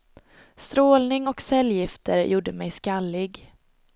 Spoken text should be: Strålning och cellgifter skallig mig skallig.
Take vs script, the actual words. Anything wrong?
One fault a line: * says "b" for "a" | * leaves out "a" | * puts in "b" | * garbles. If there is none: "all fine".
* says "gjorde" for "skallig"